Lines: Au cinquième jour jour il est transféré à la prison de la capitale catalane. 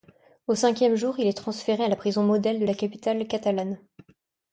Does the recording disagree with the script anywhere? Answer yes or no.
yes